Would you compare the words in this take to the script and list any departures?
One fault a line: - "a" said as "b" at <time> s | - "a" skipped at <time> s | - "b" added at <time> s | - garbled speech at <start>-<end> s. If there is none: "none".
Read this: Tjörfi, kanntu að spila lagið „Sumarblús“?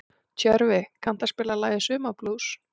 none